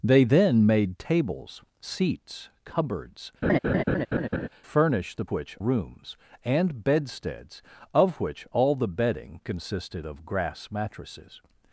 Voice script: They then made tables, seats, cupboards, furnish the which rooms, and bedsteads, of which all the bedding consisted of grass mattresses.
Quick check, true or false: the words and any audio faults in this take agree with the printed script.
false